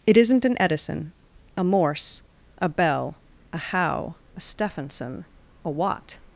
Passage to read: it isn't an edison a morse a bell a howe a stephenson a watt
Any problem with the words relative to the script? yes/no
no